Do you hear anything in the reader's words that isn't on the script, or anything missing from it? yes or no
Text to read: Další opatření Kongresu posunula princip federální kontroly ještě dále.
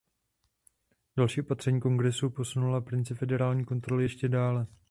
no